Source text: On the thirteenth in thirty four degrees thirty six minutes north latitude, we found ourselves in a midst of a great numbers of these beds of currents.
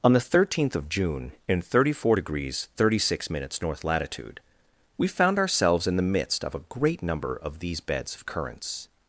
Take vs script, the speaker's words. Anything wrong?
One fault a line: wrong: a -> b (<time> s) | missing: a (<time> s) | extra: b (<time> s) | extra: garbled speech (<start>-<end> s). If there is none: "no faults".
extra: of June (0.8 s)
wrong: a -> the (6.0 s)
wrong: numbers -> number (7.0 s)